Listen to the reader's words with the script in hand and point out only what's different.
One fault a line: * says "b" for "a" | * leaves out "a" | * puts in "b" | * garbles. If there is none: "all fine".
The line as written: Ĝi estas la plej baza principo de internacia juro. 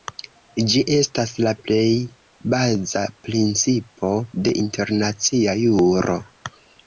all fine